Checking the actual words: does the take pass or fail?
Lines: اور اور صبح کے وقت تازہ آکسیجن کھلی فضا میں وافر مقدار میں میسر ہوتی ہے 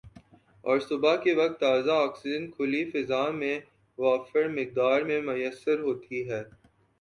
fail